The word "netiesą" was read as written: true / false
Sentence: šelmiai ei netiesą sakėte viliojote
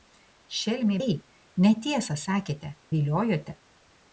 true